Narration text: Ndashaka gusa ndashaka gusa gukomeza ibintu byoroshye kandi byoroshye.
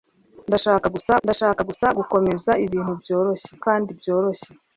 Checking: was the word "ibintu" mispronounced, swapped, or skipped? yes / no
no